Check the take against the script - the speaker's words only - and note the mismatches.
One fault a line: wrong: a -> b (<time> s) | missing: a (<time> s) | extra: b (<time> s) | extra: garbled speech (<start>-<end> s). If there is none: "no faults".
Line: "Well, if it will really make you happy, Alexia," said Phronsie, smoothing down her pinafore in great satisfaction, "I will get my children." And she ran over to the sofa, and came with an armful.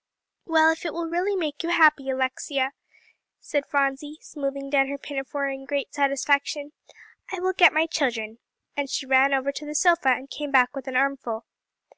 extra: back (10.5 s)